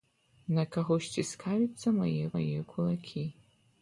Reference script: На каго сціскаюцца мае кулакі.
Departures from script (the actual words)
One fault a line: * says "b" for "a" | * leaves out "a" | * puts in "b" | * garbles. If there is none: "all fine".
* puts in "мае"